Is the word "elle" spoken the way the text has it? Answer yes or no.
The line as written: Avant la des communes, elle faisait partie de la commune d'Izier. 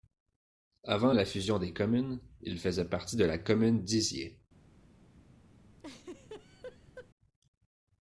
no